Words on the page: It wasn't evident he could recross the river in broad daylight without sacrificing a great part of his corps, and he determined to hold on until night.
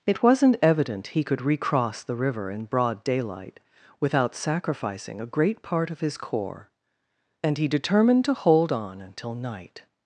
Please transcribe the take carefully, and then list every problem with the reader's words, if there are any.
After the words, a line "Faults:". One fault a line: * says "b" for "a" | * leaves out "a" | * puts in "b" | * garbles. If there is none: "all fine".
It wasn't evident he could recross the river in broad daylight without sacrificing a great part of his corps, and he determined to hold on until night.
Faults:
all fine